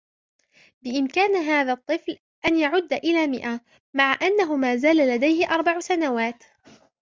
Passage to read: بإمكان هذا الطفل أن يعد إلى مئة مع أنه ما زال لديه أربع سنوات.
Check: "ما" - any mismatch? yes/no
no